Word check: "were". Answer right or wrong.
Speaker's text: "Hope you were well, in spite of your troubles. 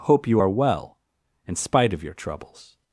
wrong